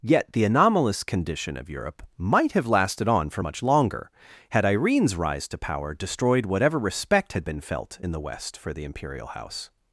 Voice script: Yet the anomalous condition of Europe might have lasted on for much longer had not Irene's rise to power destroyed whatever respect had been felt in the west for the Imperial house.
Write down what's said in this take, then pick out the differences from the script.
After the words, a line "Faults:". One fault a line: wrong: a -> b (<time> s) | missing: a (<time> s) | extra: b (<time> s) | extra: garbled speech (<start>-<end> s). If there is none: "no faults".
Yet the anomalous condition of Europe might have lasted on for much longer had Irene's rise to power destroyed whatever respect had been felt in the west for the Imperial house.
Faults:
missing: not (4.7 s)